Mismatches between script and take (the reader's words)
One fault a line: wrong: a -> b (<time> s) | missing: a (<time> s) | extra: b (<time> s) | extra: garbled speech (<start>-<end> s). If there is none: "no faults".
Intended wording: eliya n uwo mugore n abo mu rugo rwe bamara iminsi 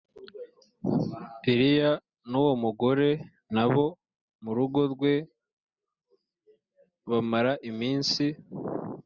no faults